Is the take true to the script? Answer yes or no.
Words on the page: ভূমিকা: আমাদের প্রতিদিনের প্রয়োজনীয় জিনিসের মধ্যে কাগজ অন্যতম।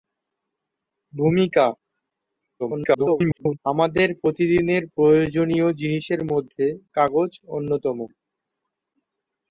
no